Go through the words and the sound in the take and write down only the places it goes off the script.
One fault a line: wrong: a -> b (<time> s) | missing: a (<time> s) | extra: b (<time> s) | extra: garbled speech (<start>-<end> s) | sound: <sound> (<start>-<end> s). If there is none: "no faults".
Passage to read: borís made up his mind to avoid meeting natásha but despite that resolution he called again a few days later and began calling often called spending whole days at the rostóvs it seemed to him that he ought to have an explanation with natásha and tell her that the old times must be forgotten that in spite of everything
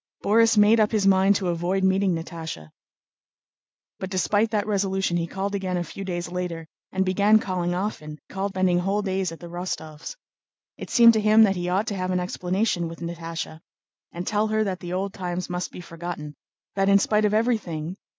no faults